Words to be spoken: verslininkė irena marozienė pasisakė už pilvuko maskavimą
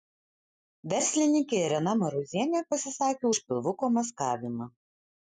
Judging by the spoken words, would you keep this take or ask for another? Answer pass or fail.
pass